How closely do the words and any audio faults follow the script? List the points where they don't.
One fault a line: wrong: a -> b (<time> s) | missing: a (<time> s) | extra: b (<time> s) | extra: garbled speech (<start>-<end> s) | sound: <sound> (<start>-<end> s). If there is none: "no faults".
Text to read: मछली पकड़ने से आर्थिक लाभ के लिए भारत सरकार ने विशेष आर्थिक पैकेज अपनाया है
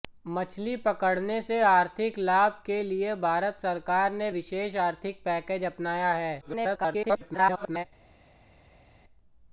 extra: garbled speech (6.4-7.8 s)